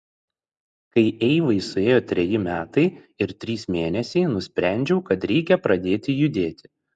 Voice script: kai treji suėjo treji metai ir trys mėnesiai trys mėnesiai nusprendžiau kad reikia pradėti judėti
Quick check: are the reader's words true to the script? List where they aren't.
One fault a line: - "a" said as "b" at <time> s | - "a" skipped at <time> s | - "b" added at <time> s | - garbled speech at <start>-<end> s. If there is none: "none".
- "treji" said as "eivai" at 1.3 s
- "trys mėnesiai" skipped at 4.2 s